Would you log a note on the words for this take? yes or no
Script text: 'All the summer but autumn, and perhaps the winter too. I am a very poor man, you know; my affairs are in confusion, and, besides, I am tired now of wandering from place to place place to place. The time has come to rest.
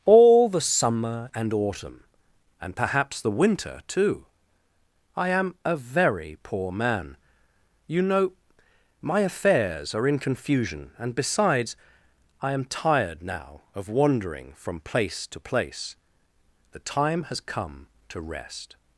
yes